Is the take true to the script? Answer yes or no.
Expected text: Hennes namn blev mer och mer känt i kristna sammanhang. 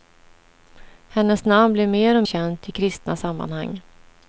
no